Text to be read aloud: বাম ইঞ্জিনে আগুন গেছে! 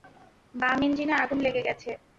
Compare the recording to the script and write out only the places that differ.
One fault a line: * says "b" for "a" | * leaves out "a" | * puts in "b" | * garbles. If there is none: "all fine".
* puts in "লেগে"